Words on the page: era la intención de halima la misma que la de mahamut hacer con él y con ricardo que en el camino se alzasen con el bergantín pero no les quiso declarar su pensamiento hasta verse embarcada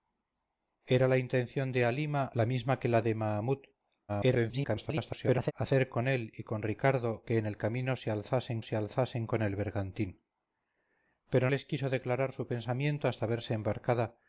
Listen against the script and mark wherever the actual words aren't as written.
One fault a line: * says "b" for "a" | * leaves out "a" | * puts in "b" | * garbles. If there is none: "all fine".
* garbles
* puts in "se alzasen"
* leaves out "no"